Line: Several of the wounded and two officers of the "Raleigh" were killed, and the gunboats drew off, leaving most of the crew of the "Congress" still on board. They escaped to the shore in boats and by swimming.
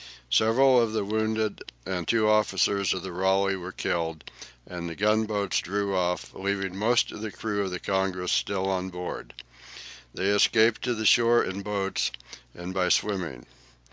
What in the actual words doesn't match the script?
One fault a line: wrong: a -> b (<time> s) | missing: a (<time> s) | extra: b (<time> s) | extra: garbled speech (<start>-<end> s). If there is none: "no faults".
no faults